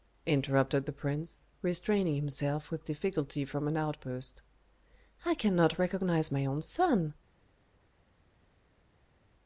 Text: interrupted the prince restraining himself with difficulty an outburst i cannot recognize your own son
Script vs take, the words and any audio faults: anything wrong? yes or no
yes